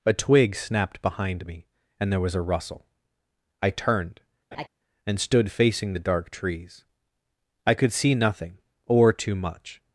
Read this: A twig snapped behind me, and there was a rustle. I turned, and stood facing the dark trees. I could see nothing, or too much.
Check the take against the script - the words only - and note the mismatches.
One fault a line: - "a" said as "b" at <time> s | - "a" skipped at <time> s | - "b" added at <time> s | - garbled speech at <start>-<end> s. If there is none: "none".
none